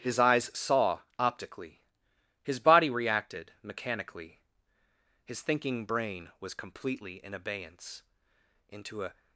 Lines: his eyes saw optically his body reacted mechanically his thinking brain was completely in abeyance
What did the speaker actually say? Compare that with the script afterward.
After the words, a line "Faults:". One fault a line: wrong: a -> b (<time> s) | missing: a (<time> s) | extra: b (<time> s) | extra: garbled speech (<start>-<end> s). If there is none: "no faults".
his eyes saw optically his body reacted mechanically his thinking brain was completely in abeyance into a
Faults:
extra: into a (8.7 s)